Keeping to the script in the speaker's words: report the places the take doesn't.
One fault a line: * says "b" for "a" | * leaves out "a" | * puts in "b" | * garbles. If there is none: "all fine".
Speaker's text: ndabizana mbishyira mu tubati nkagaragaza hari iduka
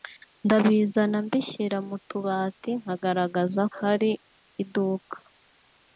all fine